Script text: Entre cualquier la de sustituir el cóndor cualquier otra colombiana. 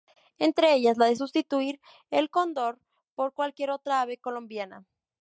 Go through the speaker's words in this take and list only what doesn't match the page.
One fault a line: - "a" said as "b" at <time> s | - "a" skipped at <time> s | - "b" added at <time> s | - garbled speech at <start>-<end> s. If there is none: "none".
- "cualquier" said as "ellas" at 0.7 s
- "por" added at 3.1 s
- "ave" added at 4.0 s